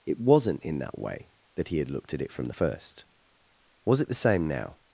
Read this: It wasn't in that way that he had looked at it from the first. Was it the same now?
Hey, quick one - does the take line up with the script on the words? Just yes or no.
yes